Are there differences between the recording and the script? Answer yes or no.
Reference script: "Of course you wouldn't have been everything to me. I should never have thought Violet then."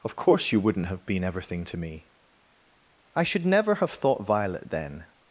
no